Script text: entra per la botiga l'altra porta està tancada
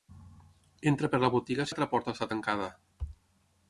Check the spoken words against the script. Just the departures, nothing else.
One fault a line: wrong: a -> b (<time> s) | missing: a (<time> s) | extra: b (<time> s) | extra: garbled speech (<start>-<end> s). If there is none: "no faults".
no faults